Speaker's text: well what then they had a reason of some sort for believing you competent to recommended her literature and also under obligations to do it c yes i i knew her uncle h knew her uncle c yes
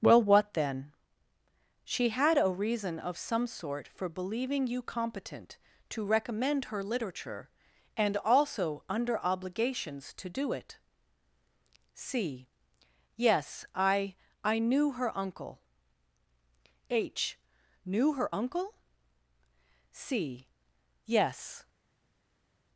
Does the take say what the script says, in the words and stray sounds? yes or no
no